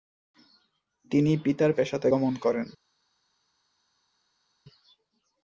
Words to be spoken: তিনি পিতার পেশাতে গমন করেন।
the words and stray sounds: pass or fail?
pass